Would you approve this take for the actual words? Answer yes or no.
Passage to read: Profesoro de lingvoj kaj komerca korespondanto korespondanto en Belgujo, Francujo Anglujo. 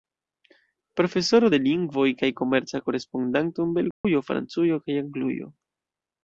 no